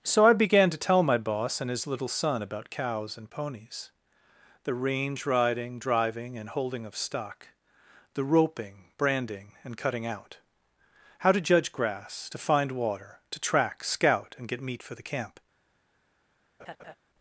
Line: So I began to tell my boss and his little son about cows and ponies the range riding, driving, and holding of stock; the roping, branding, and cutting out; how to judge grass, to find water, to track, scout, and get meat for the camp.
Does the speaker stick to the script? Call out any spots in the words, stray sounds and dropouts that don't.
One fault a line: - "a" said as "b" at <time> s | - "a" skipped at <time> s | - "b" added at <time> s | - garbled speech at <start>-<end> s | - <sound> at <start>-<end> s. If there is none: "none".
- laugh at 16.6-16.9 s